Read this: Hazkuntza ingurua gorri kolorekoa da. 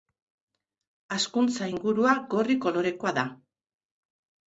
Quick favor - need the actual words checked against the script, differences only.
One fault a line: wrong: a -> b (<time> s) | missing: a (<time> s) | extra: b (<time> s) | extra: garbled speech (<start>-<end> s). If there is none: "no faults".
no faults